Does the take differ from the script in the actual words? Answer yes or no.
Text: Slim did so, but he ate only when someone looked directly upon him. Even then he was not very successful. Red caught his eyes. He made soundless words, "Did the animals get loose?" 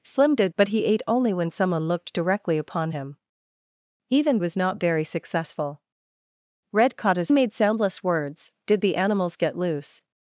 yes